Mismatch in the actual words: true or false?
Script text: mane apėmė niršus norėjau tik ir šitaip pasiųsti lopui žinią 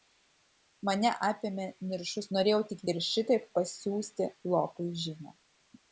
false